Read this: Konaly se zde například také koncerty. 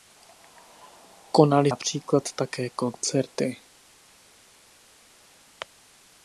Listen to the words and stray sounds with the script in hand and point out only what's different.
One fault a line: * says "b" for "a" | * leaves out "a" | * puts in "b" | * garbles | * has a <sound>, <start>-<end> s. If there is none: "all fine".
* leaves out "se zde"